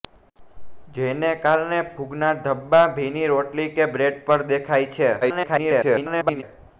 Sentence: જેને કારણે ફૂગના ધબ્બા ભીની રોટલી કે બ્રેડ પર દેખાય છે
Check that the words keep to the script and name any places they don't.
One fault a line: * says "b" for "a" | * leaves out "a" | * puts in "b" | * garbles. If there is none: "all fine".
* garbles